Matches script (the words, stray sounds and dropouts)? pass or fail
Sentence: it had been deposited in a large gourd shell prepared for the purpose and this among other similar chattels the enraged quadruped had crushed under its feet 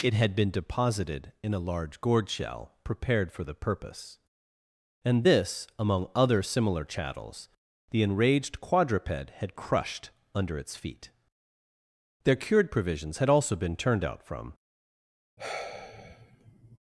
fail